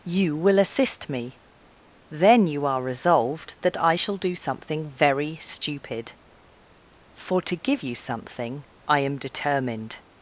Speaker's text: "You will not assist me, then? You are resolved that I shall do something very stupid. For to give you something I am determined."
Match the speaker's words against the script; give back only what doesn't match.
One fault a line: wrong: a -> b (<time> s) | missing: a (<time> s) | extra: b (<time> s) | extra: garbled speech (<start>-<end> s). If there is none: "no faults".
missing: not (0.6 s)